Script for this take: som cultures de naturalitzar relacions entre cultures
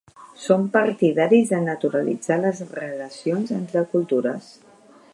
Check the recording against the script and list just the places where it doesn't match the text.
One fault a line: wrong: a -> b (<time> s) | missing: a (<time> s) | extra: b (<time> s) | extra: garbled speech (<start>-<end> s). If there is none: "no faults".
wrong: cultures -> partidaris (0.8 s)
extra: les (2.5 s)